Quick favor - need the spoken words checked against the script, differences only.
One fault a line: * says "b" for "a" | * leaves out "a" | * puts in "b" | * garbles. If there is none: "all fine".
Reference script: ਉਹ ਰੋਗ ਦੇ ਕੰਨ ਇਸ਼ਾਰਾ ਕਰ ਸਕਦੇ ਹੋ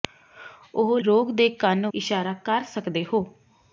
all fine